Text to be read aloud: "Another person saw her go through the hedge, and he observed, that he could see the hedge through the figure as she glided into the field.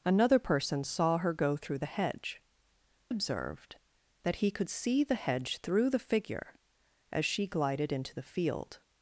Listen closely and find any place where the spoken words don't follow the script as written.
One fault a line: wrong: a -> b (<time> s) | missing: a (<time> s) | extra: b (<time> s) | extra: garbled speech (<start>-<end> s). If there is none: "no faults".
missing: and he (2.4 s)